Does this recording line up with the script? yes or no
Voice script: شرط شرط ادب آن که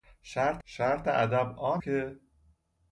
yes